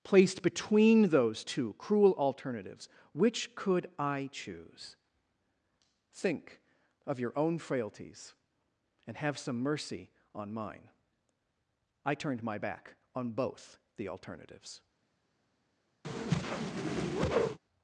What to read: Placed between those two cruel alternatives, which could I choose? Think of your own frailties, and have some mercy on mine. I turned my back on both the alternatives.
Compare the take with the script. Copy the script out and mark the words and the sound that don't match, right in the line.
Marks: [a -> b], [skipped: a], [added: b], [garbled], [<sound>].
Placed between those two cruel alternatives, which could I choose? Think of your own frailties, and have some mercy on mine. I turned my back on both the alternatives. [whoosh]